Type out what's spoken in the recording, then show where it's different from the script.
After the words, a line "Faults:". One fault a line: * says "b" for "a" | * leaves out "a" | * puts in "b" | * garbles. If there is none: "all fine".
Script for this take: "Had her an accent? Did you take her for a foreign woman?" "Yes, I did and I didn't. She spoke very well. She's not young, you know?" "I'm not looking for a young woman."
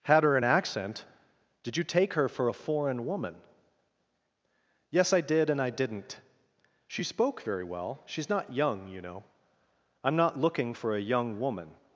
"Had her an accent? Did you take her for a foreign woman?" "Yes, I did and I didn't. She spoke very well. She's not young, you know?" "I'm not looking for a young woman."
Faults:
all fine